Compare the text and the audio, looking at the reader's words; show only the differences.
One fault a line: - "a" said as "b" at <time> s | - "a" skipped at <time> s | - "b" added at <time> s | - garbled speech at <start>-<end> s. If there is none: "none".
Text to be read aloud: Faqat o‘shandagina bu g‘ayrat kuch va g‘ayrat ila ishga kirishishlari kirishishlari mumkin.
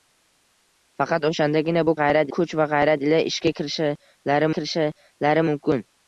none